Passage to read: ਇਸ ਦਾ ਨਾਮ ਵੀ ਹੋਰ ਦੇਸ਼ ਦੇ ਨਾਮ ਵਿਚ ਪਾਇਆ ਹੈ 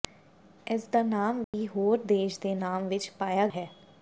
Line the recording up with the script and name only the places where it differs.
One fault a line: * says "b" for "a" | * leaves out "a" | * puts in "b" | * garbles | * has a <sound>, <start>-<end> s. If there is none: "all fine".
* has a dropout, 1.4-1.5 s